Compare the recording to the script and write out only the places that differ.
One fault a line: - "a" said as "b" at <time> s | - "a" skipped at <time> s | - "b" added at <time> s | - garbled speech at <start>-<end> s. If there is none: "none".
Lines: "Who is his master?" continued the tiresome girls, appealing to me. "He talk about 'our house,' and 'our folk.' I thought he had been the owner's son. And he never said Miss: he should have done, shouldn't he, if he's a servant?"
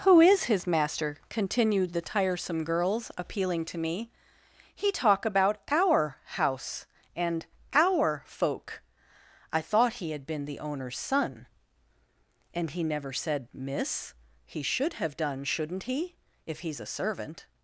none